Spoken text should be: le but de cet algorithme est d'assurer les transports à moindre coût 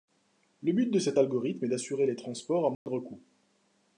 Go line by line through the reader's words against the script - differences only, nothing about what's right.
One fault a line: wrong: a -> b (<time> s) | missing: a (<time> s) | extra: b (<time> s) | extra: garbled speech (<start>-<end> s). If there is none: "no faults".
no faults